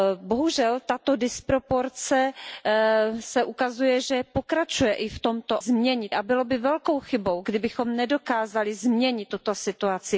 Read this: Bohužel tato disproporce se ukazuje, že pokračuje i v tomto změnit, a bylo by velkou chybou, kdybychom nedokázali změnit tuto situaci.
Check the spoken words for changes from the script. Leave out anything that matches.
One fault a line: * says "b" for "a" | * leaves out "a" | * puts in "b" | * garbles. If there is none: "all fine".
all fine